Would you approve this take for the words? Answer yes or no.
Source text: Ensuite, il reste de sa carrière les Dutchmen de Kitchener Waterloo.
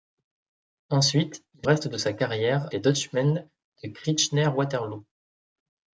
yes